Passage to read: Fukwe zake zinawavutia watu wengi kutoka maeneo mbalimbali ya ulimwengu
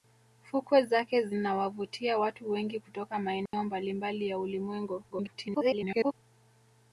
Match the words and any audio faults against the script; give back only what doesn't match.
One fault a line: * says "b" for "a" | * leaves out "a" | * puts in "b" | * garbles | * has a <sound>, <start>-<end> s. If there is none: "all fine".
* has a dropout, 3.5-3.5 s
* garbles